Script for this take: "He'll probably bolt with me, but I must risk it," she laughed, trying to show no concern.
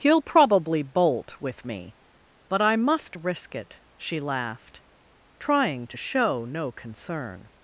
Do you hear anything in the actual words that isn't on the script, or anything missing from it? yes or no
no